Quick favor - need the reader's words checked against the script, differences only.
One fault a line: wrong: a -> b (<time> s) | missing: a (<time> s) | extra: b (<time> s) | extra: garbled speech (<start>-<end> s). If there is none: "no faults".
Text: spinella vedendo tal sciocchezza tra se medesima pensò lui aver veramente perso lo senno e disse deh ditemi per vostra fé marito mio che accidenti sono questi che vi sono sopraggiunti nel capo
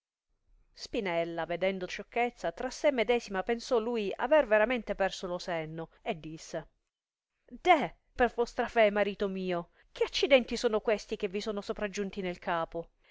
missing: tal (1.9 s)
missing: ditemi (7.9 s)